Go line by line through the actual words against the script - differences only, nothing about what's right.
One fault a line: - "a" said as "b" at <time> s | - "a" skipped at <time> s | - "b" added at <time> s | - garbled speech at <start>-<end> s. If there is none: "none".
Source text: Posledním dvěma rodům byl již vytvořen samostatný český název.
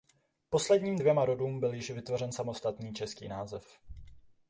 none